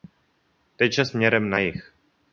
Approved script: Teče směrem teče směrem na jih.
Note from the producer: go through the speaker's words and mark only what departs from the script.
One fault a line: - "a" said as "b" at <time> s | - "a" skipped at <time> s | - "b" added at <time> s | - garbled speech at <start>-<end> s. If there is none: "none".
- "teče směrem" skipped at 1.5 s